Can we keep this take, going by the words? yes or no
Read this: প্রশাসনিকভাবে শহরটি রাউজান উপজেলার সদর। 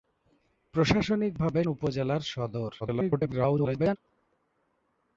no